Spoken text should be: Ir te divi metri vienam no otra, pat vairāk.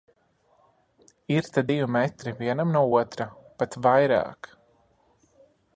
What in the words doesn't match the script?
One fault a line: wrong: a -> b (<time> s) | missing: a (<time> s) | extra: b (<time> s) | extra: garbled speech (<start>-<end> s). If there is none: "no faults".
no faults